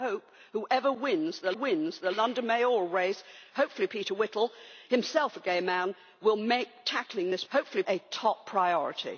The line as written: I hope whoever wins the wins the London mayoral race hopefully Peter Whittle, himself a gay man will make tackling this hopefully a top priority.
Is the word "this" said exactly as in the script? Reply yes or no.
yes